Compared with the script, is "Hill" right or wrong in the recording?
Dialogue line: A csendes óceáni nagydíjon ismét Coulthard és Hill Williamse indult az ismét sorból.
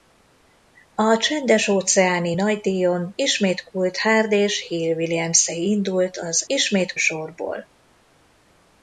right